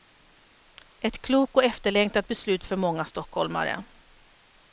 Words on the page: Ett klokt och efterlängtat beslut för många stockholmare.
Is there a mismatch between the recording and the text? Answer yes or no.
no